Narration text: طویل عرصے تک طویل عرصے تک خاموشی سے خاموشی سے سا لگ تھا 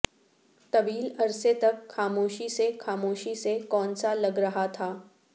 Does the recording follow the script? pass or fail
fail